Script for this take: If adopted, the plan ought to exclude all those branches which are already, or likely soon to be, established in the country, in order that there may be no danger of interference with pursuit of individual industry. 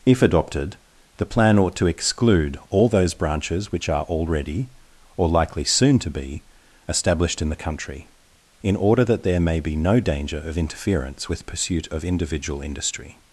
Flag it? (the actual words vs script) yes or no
no